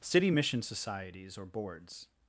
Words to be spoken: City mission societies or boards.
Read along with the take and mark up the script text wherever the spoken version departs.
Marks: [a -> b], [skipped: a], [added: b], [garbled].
City mission societies or boards.